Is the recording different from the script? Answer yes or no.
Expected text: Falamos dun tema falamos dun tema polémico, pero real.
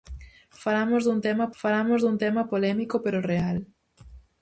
no